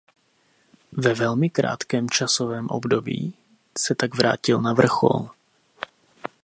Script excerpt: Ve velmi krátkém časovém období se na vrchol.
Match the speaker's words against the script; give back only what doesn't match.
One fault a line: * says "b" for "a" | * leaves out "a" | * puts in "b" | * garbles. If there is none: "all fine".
* puts in "tak vrátil"